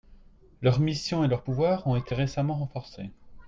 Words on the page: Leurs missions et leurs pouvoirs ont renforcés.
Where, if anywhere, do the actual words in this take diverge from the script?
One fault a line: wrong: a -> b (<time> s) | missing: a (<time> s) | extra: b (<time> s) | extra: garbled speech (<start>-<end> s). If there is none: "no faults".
extra: été récemment (2.0 s)